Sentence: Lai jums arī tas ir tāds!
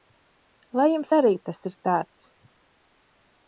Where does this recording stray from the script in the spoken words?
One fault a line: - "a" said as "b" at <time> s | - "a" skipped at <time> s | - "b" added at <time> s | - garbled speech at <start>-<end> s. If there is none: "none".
none